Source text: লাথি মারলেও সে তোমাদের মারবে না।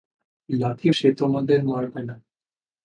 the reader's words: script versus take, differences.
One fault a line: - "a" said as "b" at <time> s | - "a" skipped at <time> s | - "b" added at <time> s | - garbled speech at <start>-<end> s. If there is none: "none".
- "মারলেও" skipped at 0.9 s